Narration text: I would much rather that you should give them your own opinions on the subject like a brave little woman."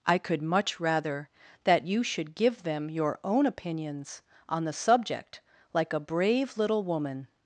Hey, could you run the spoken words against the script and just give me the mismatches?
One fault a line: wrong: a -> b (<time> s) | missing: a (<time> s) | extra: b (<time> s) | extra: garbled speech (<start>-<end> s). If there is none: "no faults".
wrong: would -> could (0.2 s)